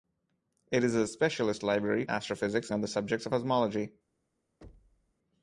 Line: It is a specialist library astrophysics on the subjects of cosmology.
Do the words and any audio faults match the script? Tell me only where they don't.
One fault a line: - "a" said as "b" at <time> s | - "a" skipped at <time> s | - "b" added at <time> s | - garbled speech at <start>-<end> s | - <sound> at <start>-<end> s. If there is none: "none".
- thud at 4.6-5.1 s